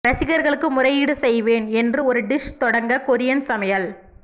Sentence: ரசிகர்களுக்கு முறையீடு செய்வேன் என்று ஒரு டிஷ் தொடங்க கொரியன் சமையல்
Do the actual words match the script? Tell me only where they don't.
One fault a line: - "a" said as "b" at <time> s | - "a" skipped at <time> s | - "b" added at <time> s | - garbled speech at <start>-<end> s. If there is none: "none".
none